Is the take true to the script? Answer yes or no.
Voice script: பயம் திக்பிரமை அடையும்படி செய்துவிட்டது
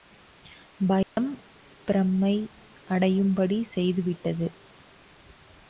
yes